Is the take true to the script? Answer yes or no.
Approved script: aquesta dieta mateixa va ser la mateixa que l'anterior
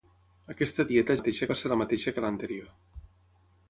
yes